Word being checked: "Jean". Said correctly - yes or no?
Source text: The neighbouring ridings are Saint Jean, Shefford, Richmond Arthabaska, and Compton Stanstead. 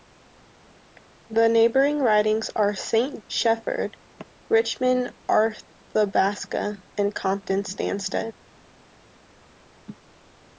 no